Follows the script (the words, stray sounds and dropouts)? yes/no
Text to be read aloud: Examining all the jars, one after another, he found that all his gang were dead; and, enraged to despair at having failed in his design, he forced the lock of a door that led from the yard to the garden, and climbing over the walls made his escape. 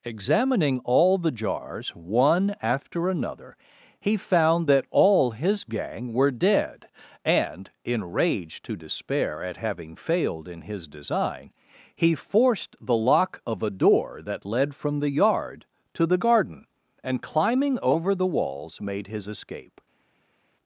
yes